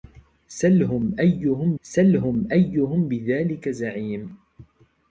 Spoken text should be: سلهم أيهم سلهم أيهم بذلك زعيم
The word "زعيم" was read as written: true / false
true